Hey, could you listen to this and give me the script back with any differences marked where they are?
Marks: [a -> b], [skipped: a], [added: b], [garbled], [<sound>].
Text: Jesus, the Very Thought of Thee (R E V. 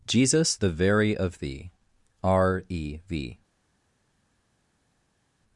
Jesus, the Very [skipped: Thought] of Thee (R E V.